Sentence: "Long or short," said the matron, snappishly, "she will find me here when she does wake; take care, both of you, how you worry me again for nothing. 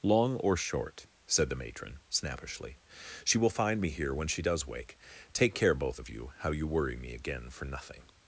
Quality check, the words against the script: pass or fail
pass